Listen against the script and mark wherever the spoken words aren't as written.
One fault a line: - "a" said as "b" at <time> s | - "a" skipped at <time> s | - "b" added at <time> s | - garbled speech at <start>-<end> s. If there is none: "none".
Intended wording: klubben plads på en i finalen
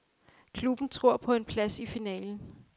- "plads" said as "tror" at 0.9 s
- "plads" added at 1.4 s